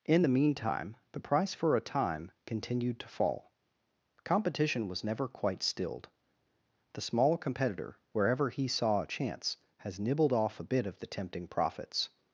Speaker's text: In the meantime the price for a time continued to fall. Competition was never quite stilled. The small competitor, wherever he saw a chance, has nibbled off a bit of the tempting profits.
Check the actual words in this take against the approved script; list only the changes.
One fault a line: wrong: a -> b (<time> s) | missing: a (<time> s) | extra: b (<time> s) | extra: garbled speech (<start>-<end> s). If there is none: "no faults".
no faults